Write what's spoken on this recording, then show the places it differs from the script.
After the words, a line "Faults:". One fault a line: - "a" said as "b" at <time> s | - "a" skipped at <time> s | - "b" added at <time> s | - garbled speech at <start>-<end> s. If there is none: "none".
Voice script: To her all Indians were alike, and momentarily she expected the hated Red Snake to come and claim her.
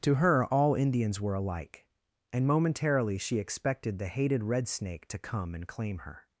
To her all Indians were alike, and momentarily she expected the hated Red Snake to come and claim her.
Faults:
none